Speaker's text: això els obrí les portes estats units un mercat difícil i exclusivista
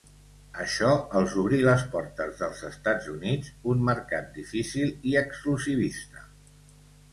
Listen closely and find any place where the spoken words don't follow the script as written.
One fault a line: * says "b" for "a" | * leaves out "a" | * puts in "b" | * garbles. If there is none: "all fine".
* puts in "dels"